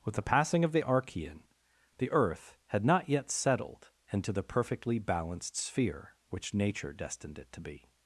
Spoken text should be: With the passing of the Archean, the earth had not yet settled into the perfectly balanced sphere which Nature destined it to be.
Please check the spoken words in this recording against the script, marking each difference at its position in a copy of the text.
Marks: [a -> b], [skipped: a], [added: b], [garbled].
With the passing of the Archean, the earth had not yet settled into the perfectly balanced sphere which Nature destined it to be.